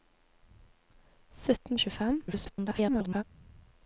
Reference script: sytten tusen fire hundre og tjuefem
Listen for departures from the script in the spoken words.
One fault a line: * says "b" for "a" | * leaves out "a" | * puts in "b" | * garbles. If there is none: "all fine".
* leaves out "tusen fire hundre"
* garbles